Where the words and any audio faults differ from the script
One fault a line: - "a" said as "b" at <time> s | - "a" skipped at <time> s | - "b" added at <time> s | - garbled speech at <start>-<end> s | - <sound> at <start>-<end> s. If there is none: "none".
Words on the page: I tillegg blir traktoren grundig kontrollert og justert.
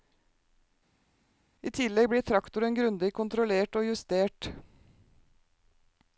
none